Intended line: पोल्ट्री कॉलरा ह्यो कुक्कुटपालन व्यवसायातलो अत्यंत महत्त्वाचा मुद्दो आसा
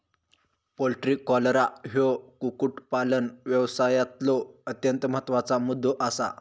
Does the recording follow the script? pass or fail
pass